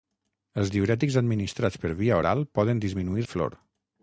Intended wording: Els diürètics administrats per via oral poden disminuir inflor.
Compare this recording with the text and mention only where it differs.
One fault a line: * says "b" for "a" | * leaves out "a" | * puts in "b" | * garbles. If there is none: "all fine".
all fine